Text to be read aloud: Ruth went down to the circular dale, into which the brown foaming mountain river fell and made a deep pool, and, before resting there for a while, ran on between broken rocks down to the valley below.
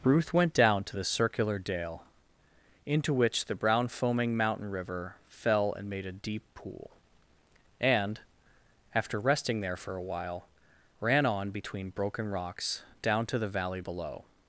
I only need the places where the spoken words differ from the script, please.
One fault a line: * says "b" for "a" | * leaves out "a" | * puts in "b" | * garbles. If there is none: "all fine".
* says "after" for "before"